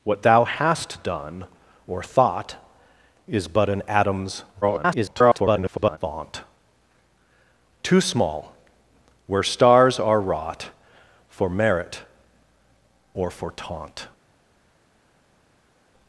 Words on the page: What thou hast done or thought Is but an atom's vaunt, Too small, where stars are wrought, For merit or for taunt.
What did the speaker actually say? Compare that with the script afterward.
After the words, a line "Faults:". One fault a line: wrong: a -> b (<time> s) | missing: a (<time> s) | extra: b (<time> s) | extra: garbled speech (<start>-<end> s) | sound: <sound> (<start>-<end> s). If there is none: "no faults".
What thou hast done or thought Is but an atom's [garbled] vaunt, Too small, where stars are wrought, For merit or for taunt.
Faults:
extra: garbled speech (4.6-6.0 s)